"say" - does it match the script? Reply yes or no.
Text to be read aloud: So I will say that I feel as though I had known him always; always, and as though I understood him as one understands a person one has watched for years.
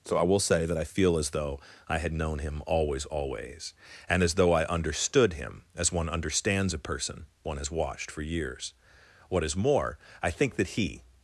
yes